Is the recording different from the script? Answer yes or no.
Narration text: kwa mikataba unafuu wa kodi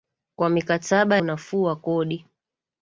no